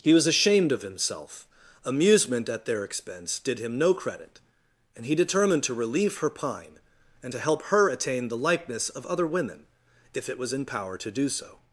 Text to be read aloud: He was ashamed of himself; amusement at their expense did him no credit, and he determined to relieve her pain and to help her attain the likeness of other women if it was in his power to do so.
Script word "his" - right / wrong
wrong